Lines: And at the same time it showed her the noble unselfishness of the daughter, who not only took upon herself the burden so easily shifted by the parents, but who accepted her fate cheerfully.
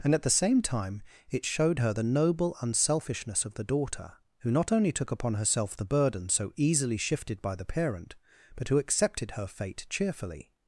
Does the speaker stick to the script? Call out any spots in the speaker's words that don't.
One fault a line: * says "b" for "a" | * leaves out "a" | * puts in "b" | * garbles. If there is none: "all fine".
* says "parent" for "parents"